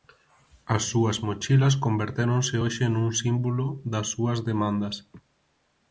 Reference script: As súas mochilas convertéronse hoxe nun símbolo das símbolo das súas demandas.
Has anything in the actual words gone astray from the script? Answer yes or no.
yes